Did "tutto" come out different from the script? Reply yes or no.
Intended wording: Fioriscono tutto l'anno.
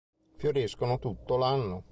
no